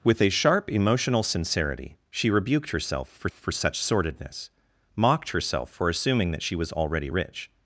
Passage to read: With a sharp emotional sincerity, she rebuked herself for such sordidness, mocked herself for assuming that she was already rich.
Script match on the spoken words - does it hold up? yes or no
no